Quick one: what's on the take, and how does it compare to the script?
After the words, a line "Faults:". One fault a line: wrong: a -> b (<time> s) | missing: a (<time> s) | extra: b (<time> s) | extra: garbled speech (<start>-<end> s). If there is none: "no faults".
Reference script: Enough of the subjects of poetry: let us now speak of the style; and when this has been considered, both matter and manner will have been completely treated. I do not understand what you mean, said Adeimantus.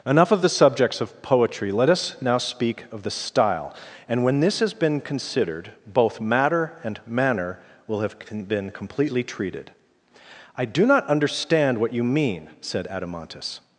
Enough of the subjects of poetry: let us now speak of the style; and when this has been considered, both matter and manner will have been completely treated. I do not understand what you mean, said Adeimantus.
Faults:
no faults